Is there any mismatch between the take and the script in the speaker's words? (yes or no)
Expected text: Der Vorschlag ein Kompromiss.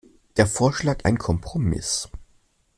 no